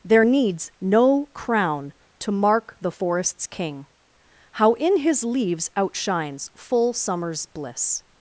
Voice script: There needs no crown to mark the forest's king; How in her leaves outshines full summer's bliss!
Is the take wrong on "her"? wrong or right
wrong